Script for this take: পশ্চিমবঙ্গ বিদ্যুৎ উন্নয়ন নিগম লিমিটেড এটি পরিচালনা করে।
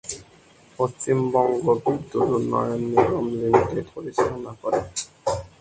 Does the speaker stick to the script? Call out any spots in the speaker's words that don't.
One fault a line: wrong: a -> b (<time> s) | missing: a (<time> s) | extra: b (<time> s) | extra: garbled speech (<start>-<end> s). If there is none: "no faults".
missing: এটি (3.9 s)